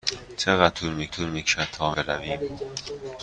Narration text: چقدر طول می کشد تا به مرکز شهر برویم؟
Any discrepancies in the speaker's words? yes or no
yes